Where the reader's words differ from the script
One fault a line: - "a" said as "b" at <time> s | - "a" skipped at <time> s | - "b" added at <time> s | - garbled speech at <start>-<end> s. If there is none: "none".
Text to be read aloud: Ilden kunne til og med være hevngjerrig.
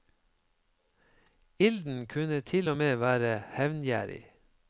none